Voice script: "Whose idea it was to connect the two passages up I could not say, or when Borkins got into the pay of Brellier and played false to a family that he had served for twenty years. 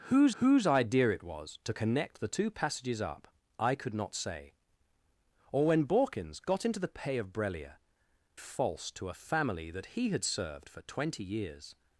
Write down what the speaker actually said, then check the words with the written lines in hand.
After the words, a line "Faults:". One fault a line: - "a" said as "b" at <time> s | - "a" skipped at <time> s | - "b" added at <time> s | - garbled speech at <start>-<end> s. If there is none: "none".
"Whose whose idea it was to connect the two passages up I could not say, or when Borkins got into the pay of Brellier false to a family that he had served for twenty years.
Faults:
- "whose" added at 0.4 s
- "and played" skipped at 7.8 s